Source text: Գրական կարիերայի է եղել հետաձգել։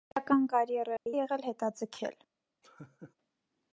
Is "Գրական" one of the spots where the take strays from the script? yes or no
no